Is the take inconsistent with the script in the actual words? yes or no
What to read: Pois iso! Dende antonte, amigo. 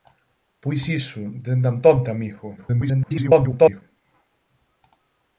yes